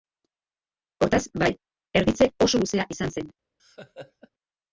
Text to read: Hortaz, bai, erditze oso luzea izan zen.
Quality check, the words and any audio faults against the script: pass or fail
fail